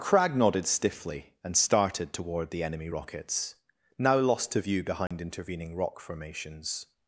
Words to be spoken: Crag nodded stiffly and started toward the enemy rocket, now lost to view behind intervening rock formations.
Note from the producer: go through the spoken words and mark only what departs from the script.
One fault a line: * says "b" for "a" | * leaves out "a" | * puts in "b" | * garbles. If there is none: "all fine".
* says "rockets" for "rocket"